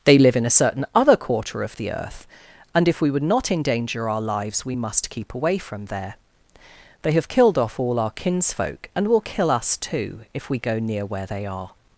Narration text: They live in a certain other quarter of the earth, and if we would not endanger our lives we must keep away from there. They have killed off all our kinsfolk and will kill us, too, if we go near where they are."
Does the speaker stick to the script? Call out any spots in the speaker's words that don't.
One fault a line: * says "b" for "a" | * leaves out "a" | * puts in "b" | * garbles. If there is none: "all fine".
all fine